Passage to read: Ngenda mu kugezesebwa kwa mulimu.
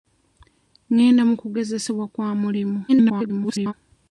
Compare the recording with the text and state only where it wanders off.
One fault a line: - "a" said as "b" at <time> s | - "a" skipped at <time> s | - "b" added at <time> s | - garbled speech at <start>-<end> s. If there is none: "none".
- garbled speech at 2.9-3.7 s